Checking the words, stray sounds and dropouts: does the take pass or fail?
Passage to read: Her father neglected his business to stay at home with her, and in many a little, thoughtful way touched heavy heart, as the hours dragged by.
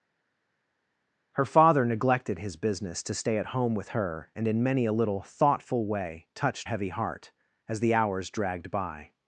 pass